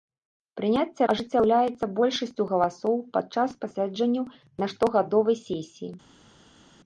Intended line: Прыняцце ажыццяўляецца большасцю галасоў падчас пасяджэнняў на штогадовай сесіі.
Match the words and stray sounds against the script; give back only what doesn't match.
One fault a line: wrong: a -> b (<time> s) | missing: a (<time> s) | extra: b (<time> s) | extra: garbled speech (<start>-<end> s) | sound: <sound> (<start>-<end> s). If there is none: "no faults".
no faults